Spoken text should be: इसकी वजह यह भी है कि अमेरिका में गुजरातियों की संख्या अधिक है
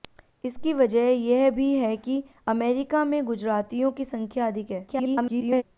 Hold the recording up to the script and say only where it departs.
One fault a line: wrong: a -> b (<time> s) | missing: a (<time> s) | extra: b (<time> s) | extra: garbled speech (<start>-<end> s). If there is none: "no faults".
extra: garbled speech (4.9-5.6 s)